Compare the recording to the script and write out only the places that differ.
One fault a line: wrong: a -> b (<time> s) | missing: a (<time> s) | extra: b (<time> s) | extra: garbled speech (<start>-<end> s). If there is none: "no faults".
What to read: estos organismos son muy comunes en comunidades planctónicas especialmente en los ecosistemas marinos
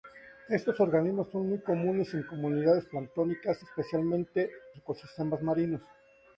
missing: en los (4.5 s)